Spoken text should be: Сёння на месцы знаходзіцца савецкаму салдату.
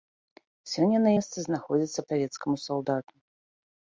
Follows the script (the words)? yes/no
yes